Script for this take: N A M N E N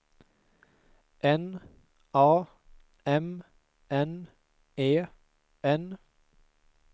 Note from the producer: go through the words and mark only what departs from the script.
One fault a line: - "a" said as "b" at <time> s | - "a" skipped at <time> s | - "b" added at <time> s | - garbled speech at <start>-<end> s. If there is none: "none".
none